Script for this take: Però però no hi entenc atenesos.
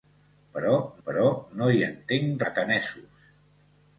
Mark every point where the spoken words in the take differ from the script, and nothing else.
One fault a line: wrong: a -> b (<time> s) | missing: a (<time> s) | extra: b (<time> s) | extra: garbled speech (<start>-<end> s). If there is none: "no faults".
no faults